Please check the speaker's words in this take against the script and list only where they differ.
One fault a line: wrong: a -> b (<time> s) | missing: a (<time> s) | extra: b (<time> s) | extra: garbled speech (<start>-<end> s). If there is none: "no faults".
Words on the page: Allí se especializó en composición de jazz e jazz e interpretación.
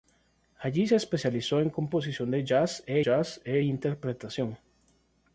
no faults